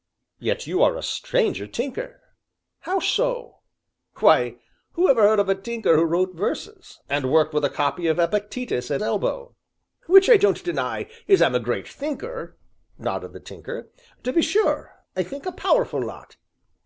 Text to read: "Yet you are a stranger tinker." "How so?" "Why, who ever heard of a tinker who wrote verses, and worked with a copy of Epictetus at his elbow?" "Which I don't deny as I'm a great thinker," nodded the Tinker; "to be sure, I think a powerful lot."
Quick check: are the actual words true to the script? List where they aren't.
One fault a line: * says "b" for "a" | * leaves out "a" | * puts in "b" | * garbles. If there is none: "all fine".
* leaves out "his"